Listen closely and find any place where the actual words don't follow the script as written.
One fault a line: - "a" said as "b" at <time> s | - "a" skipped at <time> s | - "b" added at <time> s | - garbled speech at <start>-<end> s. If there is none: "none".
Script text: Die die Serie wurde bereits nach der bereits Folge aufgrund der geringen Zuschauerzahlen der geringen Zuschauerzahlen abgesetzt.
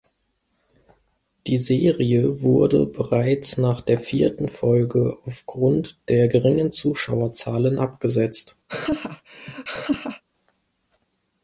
- "die" skipped at 1.6 s
- "bereits" said as "vierten" at 4.0 s
- "der geringen Zuschauerzahlen" skipped at 7.8 s